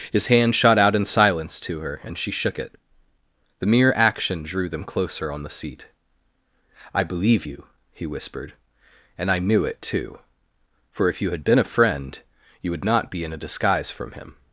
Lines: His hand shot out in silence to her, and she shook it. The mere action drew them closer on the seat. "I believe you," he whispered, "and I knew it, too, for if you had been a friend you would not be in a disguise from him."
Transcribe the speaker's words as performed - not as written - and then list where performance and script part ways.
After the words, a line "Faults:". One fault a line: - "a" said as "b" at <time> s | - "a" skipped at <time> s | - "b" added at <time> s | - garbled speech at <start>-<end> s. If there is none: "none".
His hand shot out in silence to her, and she shook it. The mere action drew them closer on the seat. "I believe you," he whispered, "and I knew it, too, for if you had been a friend you would not be in a disguise from him."
Faults:
none